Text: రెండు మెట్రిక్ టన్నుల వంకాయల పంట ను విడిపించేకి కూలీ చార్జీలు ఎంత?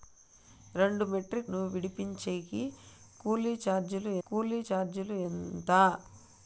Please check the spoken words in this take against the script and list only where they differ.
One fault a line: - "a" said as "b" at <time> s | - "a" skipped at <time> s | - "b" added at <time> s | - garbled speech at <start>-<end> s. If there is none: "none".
- "టన్నుల వంకాయల పంట ను విడిపించేకి" said as "ను విడిపించేకి కూలీ చార్జీలు" at 1.5 s